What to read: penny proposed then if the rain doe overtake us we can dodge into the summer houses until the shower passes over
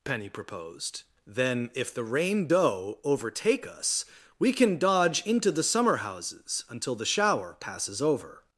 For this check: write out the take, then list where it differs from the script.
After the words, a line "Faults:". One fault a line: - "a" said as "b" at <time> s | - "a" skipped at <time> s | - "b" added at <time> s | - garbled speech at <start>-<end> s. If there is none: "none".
penny proposed then if the rain doe overtake us we can dodge into the summer houses until the shower passes over
Faults:
none